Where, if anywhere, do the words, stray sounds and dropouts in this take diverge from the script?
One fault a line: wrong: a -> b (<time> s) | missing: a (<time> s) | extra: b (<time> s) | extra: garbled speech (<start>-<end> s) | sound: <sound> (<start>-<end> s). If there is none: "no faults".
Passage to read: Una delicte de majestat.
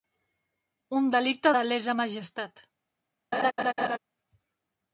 wrong: Una -> Un (1.0 s)
extra: lesa (1.7 s)
sound: laugh (3.3-4.0 s)